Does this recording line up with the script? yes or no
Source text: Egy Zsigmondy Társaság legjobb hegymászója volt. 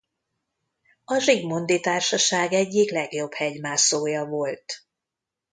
no